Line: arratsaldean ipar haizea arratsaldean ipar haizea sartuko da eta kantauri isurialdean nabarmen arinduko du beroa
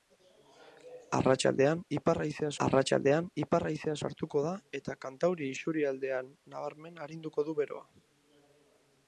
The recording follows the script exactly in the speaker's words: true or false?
true